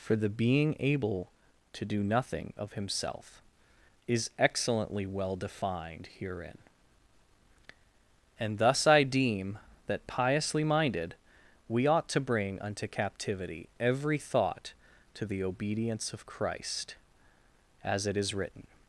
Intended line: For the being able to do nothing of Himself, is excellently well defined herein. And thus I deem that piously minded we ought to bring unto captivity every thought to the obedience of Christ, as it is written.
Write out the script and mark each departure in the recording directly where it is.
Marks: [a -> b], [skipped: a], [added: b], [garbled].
For the being able to do nothing of Himself, is excellently well defined herein. And thus I deem that piously minded we ought to bring unto captivity every thought to the obedience of Christ, as it is written.